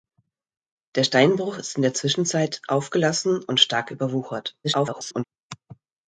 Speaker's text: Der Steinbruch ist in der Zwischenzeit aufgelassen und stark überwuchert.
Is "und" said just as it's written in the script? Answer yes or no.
yes